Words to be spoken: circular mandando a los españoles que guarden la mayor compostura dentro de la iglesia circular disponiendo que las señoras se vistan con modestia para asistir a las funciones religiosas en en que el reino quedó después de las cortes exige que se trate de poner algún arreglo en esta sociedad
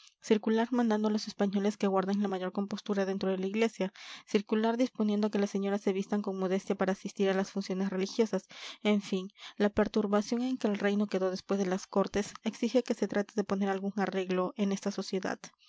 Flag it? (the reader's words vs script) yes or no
yes